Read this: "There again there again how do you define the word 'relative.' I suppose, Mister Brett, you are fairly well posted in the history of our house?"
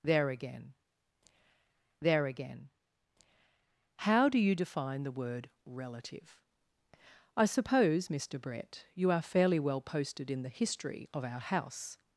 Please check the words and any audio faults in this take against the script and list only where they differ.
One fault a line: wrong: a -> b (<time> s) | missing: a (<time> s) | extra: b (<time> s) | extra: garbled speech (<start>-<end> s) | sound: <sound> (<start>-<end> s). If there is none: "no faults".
no faults